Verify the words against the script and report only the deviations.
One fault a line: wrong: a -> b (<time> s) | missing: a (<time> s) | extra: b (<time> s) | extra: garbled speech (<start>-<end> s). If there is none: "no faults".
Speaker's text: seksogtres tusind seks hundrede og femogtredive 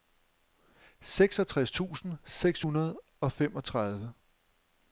no faults